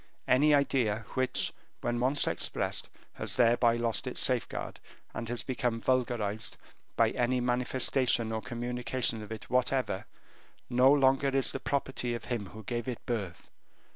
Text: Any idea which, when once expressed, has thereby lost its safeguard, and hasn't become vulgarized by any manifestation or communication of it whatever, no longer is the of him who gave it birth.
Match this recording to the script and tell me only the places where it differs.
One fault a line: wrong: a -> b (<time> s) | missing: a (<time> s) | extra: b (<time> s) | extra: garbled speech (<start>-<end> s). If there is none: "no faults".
wrong: hasn't -> has (5.3 s)
extra: property (11.6 s)